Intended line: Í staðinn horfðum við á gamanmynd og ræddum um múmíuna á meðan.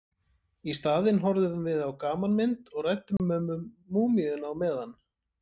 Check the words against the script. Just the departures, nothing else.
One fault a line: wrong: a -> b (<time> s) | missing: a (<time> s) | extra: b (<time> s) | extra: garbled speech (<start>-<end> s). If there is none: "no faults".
no faults